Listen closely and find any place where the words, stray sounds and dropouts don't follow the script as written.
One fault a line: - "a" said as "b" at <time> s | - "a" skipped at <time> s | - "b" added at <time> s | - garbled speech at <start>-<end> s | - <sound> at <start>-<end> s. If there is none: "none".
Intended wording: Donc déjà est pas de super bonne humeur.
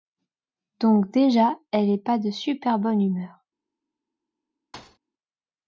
- "elle" added at 1.7 s
- thud at 4.7-5.0 s